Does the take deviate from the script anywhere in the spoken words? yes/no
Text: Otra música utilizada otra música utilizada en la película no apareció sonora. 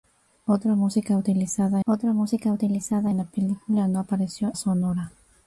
no